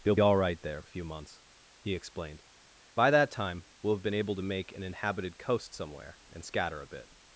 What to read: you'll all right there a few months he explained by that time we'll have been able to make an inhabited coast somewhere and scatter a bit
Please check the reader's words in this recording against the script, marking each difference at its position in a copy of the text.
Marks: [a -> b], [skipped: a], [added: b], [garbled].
you'll all right there a few months he explained by that time we'll have been able to make an inhabited coast somewhere and scatter a bit